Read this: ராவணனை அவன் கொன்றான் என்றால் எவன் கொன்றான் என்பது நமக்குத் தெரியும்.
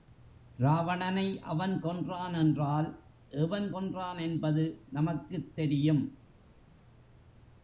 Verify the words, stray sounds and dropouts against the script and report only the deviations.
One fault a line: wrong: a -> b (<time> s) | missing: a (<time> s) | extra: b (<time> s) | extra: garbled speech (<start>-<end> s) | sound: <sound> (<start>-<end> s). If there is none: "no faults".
no faults